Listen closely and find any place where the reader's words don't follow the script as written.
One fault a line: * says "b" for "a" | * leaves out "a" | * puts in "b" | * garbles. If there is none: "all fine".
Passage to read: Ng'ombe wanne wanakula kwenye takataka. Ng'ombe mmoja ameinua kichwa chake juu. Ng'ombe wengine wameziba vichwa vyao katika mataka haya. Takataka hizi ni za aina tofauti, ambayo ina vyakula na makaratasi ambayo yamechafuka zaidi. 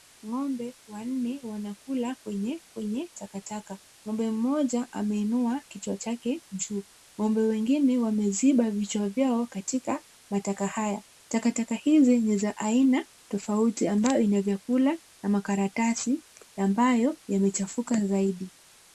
* puts in "kwenye"